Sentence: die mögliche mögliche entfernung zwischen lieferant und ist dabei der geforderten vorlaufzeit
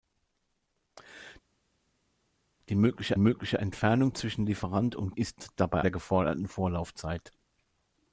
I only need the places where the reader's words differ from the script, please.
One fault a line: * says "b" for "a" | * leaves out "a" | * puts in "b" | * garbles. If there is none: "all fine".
all fine